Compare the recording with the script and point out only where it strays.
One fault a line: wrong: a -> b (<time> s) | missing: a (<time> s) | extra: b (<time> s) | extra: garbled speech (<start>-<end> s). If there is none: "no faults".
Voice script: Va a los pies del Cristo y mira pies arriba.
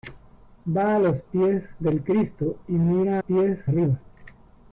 no faults